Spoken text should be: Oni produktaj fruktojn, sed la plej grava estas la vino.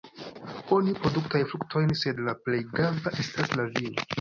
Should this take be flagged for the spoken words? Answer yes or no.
no